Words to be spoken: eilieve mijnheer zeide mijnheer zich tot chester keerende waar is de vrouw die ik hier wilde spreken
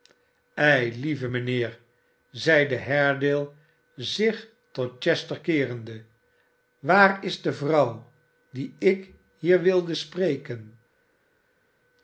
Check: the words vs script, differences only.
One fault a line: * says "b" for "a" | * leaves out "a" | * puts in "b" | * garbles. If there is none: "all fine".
* says "haredale" for "mijnheer"